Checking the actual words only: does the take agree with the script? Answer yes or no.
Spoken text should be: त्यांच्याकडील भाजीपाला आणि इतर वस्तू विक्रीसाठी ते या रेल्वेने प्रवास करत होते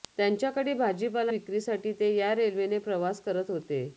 no